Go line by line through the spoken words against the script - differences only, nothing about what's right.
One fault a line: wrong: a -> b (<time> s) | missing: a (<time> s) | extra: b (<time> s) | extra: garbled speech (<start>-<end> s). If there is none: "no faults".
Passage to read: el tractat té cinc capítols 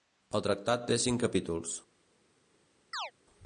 no faults